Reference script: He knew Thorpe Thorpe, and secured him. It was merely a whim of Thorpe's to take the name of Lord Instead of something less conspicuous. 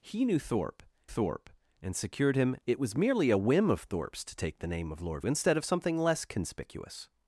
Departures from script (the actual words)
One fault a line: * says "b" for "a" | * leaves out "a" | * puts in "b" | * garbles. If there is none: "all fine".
all fine